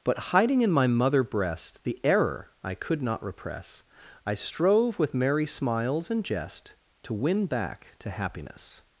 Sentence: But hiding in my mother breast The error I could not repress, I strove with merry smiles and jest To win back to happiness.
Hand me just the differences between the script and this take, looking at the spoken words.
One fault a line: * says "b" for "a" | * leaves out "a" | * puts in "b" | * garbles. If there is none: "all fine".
all fine